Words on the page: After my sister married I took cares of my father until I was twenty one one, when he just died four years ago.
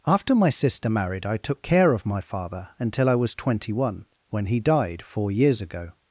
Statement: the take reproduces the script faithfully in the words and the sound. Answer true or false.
false